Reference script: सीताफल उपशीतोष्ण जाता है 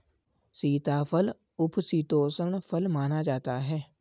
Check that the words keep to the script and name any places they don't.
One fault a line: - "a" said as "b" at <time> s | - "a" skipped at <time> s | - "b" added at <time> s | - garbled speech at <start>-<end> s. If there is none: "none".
- "फल माना" added at 2.6 s